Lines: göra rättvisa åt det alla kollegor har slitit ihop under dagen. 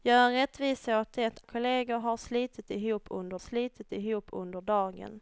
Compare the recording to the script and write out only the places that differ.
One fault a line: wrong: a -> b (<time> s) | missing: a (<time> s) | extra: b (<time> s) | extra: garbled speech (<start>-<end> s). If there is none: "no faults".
missing: alla (1.4 s)
extra: slitit ihop under (3.4 s)